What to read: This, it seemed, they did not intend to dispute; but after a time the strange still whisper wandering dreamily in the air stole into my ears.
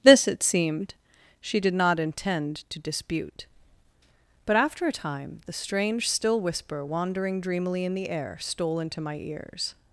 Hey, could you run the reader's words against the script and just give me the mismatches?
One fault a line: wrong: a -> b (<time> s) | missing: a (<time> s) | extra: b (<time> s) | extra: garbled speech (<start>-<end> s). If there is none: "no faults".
wrong: they -> she (1.4 s)